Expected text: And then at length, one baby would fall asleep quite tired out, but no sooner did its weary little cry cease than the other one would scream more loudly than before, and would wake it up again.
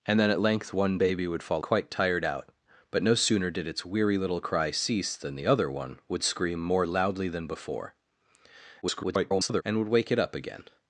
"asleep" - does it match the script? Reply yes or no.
no